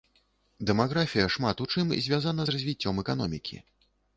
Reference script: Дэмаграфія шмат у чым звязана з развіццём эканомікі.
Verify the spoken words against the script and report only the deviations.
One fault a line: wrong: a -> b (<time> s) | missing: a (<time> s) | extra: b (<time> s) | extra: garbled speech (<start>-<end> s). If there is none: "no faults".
no faults